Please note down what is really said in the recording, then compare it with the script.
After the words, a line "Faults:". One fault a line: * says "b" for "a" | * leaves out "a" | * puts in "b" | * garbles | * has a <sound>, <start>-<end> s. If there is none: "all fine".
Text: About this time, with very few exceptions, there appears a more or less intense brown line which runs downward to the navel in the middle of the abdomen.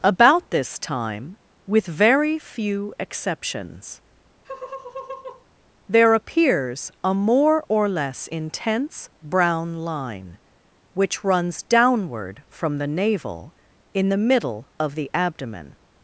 About this time, with very few exceptions, there appears a more or less intense brown line which runs downward from the navel in the middle of the abdomen.
Faults:
* has a laugh, 4.4-5.5 s
* says "from" for "to"